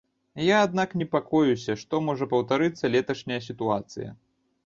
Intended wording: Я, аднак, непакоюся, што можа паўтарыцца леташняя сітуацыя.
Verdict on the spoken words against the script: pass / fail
pass